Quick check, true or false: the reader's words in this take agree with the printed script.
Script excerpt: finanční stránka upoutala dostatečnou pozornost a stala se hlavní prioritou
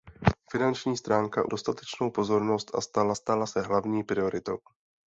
false